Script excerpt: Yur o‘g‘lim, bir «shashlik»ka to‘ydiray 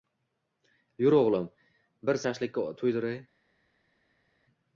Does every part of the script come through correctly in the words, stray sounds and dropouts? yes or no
yes